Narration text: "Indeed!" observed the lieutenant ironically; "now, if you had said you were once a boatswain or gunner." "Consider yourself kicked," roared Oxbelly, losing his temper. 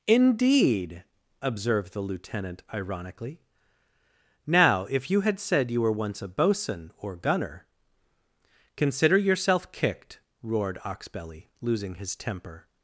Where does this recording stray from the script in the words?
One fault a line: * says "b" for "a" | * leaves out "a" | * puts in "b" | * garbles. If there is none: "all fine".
all fine